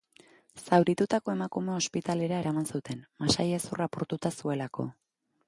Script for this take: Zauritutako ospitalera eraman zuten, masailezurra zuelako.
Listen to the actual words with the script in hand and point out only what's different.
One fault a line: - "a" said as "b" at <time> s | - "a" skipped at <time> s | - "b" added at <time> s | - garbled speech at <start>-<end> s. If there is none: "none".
- "emakumea" added at 1.3 s
- "apurtuta" added at 3.9 s